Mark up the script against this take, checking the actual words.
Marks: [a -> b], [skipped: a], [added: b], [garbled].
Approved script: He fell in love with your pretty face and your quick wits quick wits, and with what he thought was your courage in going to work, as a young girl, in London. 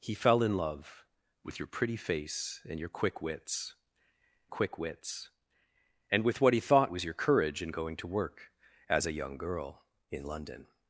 He fell in love with your pretty face and your quick wits quick wits, and with what he thought was your courage in going to work, as a young girl, in London.